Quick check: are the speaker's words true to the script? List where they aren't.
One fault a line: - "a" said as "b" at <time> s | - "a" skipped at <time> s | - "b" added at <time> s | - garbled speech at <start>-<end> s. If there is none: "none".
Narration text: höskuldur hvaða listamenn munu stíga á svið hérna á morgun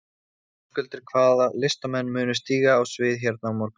none